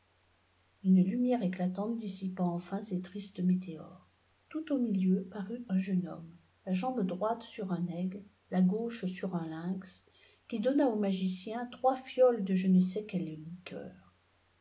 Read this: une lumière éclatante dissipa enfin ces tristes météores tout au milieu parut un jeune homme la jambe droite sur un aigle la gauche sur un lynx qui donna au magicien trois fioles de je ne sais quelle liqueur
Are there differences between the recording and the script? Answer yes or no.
no